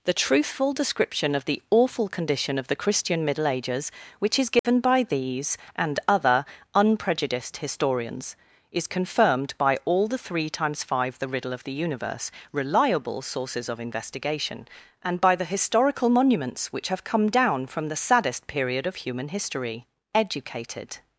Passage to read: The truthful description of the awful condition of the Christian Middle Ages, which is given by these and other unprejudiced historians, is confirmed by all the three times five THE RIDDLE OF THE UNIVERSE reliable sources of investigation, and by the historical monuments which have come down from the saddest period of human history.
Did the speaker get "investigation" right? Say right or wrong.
right